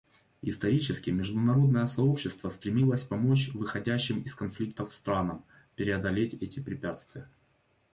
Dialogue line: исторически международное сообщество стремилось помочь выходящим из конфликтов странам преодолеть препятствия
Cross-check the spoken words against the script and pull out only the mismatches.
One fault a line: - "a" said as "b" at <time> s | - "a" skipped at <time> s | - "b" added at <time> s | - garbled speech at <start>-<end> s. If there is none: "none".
- "эти" added at 6.3 s